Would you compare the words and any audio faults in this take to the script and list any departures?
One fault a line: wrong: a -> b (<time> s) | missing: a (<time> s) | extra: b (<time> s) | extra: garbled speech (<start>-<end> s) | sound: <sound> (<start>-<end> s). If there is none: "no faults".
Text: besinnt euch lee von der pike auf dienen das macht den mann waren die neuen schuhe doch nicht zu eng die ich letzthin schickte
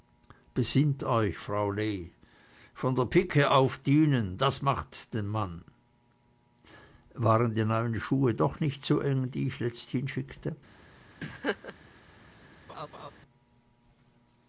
extra: frau (1.4 s)
sound: laugh (11.2-11.8 s)
sound: laugh (12.7-13.1 s)